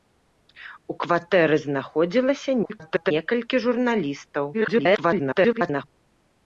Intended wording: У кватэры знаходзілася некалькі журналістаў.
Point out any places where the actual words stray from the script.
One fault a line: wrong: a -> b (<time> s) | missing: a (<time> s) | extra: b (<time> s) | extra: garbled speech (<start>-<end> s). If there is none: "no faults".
extra: garbled speech (2.6-3.1 s)
extra: garbled speech (4.5-5.8 s)